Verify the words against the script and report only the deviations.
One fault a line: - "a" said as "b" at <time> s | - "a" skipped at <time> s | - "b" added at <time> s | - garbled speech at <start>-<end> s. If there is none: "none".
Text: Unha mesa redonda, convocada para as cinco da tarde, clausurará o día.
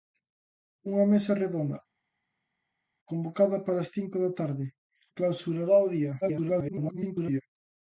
- garbled speech at 6.2-7.4 s